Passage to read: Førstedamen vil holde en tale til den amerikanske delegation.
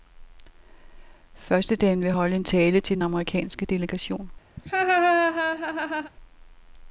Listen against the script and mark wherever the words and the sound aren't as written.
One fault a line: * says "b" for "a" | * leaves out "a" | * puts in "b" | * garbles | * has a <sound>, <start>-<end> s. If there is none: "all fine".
* has a laugh, 4.6-6.1 s